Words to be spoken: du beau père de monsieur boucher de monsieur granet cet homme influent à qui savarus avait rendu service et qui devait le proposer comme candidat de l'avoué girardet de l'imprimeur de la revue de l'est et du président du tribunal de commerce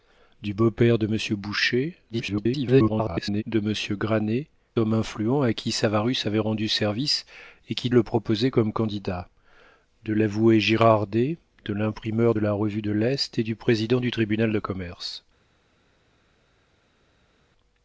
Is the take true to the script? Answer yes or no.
no